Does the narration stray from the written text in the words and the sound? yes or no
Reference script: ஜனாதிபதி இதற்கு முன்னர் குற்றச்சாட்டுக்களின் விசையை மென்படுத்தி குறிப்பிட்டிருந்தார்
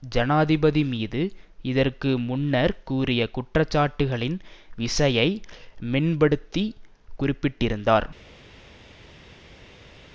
yes